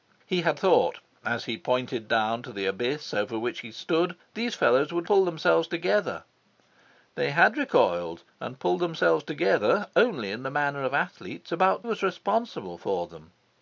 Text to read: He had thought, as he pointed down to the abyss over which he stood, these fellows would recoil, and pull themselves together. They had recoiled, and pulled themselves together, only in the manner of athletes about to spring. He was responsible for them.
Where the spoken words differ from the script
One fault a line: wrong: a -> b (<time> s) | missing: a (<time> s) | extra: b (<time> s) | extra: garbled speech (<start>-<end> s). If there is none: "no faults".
missing: recoil and (5.1 s)
missing: to spring He (11.9 s)